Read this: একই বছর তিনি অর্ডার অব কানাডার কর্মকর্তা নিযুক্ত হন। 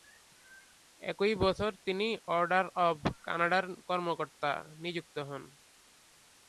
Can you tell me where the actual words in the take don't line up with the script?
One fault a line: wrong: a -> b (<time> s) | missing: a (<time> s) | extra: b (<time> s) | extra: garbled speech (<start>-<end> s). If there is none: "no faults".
no faults